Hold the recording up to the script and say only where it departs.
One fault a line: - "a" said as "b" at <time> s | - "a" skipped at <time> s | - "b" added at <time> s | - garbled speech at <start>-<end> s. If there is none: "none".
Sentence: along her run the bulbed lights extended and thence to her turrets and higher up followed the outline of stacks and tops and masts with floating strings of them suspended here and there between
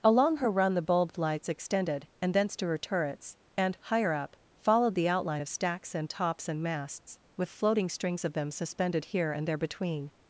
none